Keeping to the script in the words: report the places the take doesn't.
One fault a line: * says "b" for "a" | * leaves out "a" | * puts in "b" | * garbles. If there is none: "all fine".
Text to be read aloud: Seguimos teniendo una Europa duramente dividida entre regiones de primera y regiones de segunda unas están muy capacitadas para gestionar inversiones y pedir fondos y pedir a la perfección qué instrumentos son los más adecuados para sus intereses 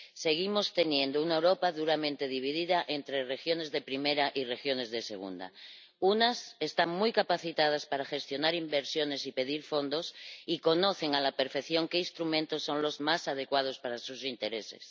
* says "conocen" for "pedir"